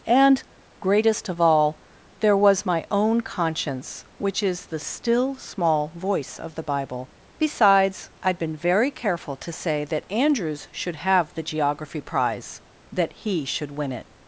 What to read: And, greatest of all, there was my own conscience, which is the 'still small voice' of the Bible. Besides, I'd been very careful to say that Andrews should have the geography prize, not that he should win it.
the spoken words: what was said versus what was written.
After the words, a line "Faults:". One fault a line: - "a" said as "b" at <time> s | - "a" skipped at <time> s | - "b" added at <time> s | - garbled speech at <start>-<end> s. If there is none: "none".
And, greatest of all, there was my own conscience, which is the 'still small voice' of the Bible. Besides, I'd been very careful to say that Andrews should have the geography prize, that he should win it.
Faults:
- "not" skipped at 12.6 s